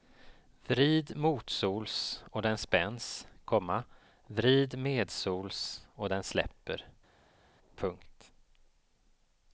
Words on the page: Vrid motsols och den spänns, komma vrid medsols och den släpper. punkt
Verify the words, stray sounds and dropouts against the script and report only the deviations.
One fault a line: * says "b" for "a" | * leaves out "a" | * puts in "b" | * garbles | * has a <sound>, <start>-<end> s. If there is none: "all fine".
all fine